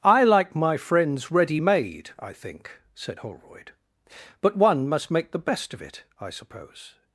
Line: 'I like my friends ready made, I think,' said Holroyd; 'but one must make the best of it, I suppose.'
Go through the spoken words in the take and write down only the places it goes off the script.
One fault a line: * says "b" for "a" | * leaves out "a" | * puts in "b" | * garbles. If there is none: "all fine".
all fine